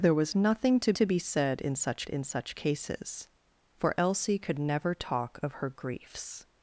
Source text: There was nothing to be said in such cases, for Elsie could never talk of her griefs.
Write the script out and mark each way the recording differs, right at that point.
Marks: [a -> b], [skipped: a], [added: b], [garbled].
There was nothing to [added: to] be said in such [added: in such] cases, for Elsie could never talk of her griefs.